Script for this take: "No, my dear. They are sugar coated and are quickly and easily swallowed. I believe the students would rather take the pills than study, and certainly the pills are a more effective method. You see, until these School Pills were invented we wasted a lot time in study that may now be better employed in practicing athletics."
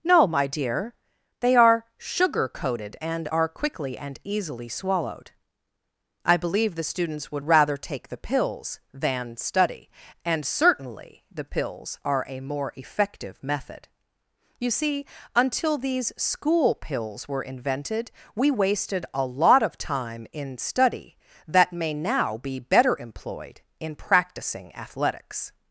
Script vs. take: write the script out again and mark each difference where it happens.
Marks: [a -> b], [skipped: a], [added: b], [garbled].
"No, my dear. They are sugar coated and are quickly and easily swallowed. I believe the students would rather take the pills than study, and certainly the pills are a more effective method. You see, until these School Pills were invented we wasted a lot [added: of] time in study that may now be better employed in practicing athletics."